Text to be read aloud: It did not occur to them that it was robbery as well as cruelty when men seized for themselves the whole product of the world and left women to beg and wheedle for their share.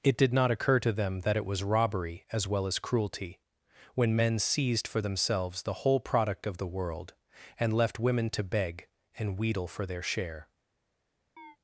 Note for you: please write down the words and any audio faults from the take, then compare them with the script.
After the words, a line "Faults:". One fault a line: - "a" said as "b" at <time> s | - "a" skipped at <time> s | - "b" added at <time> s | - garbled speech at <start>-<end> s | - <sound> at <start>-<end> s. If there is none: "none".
It did not occur to them that it was robbery as well as cruelty when men seized for themselves the whole product of the world and left women to beg and wheedle for their share.
Faults:
- chirp at 11.4-11.6 s